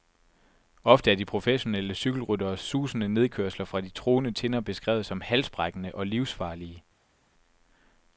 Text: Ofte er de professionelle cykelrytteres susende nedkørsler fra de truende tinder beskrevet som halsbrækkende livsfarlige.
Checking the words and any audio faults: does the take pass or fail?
fail